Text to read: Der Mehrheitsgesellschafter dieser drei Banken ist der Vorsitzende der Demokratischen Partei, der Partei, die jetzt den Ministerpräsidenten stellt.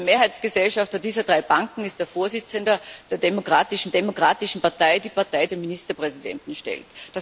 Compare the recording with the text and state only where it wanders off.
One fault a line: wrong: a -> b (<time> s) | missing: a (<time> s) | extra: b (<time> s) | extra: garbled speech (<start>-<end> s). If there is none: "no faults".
extra: Demokratischen (3.9 s)
missing: die jetzt (5.5 s)